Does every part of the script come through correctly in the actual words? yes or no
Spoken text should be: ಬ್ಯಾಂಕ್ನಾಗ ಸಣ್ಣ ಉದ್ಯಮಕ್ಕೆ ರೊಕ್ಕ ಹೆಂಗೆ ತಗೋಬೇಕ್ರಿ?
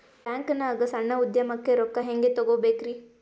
yes